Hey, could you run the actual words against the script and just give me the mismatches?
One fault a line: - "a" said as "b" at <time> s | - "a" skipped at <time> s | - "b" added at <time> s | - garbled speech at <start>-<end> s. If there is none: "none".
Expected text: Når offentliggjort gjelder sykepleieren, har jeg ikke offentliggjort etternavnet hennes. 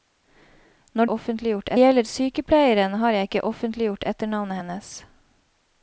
none